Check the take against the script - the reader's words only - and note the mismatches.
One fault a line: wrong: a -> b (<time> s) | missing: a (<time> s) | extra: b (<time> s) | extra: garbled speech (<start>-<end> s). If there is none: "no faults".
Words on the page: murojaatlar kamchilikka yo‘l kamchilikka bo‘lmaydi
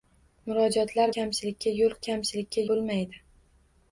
no faults